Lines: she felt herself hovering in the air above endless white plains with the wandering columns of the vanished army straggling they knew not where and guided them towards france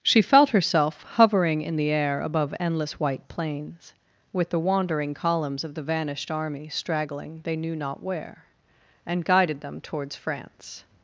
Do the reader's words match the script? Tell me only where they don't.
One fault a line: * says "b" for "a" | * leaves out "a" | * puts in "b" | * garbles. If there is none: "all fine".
all fine